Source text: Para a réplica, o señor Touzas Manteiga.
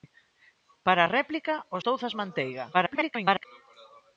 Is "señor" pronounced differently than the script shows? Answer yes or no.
yes